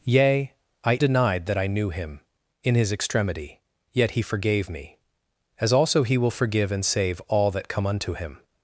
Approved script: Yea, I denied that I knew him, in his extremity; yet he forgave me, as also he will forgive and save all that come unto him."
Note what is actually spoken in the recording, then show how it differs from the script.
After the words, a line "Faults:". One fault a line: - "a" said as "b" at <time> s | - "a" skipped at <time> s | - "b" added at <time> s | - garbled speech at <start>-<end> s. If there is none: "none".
Yea, I denied that I knew him, in his extremity; yet he forgave me, as also he will forgive and save all that come unto him."
Faults:
none